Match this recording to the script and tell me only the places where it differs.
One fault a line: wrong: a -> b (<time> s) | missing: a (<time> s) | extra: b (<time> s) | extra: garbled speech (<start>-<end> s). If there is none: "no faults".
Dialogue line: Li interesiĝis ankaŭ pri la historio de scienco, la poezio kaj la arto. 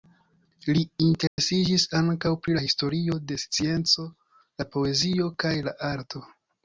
no faults